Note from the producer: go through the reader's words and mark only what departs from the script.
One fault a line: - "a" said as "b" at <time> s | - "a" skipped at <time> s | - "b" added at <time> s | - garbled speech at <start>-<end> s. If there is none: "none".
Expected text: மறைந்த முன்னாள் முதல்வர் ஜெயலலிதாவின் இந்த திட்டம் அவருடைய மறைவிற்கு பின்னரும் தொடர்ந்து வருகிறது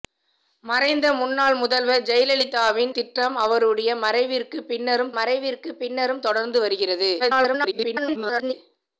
- "இந்த" skipped at 2.9 s
- "மறைவிற்கு பின்னரும்" added at 5.1 s
- garbled speech at 7.2-8.5 s